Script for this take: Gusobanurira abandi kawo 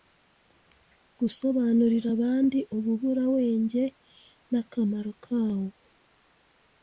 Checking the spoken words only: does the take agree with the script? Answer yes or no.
no